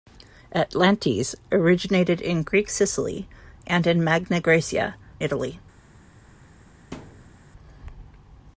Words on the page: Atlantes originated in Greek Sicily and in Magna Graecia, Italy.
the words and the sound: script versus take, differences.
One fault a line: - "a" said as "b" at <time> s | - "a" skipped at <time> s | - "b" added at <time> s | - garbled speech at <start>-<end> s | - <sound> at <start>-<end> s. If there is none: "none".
- thud at 6.9-7.4 s